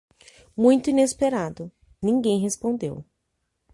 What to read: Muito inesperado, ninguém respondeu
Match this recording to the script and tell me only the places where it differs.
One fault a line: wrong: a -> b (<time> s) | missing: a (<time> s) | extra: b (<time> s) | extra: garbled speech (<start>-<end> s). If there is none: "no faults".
no faults